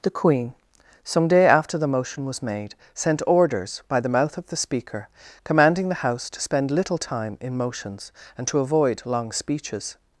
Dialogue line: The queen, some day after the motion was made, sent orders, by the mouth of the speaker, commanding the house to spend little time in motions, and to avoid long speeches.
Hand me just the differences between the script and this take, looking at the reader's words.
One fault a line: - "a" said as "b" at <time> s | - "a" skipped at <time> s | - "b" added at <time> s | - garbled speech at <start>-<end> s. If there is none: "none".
none